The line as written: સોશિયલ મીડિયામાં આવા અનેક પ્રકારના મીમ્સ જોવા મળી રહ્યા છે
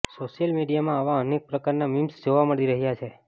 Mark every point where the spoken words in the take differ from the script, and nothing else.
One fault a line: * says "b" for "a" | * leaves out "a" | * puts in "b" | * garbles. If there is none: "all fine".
all fine